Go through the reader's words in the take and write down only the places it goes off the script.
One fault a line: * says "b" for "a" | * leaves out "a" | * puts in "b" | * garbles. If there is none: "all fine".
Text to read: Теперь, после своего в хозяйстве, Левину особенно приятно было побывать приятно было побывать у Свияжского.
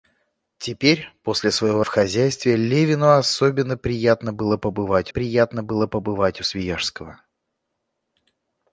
all fine